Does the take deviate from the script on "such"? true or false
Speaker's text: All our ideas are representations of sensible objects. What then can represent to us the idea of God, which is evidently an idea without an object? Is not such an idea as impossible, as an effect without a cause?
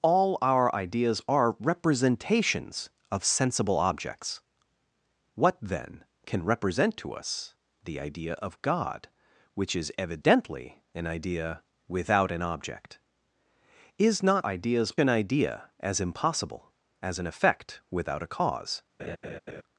true